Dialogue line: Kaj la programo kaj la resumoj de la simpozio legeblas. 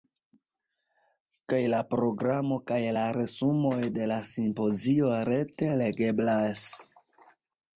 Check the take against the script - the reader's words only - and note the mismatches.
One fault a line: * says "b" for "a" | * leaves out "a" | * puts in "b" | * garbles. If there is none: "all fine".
* puts in "rete"